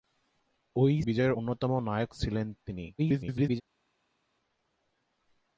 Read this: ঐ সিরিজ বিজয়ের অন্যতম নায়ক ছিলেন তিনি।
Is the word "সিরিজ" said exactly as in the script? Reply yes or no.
no